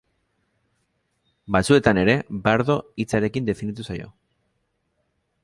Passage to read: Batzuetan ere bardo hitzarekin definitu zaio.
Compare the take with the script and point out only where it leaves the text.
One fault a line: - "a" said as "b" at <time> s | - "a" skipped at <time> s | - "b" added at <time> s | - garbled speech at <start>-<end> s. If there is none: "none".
none